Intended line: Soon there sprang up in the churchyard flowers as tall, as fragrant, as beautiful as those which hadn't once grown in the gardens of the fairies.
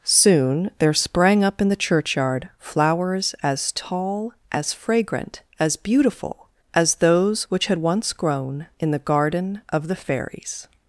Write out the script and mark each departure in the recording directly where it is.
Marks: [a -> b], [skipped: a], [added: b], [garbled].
Soon there sprang up in the churchyard flowers as tall, as fragrant, as beautiful as those which [hadn't -> had] once grown in the [gardens -> garden] of the fairies.